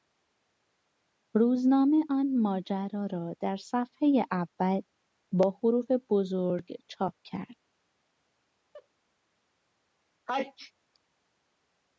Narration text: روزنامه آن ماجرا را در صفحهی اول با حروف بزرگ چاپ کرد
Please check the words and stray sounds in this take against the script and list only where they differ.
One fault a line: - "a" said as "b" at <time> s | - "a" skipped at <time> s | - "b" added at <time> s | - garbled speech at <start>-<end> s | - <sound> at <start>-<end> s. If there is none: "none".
- laugh at 8.7-8.9 s
- sneeze at 10.3-10.7 s